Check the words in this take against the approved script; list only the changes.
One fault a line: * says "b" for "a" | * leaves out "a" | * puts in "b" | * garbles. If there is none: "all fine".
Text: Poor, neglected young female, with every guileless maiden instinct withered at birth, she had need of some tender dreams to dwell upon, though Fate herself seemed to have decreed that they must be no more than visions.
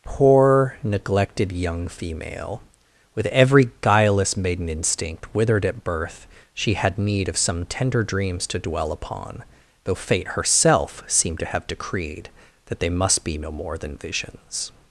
all fine